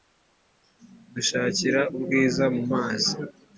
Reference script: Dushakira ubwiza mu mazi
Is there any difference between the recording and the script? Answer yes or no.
no